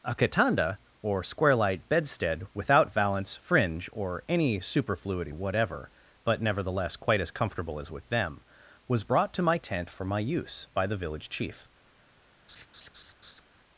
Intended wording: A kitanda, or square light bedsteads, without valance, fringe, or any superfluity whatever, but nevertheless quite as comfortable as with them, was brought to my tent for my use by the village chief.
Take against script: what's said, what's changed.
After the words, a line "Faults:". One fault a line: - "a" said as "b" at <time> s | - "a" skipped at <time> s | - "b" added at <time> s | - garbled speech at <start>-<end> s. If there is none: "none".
A kitanda, or square light bedstead, without valance, fringe, or any superfluity whatever, but nevertheless quite as comfortable as with them, was brought to my tent for my use by the village chief.
Faults:
- "bedsteads" said as "bedstead" at 1.9 s